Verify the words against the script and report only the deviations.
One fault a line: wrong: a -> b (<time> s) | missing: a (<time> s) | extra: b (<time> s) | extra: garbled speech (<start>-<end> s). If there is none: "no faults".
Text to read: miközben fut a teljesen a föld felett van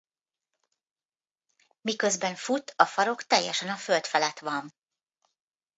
extra: farok (2.9 s)